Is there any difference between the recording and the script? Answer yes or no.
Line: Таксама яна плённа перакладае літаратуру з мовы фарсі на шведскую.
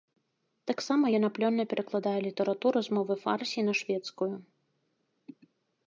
no